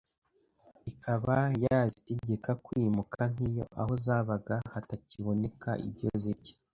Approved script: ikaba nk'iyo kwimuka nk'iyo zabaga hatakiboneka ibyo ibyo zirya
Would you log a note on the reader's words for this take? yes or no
yes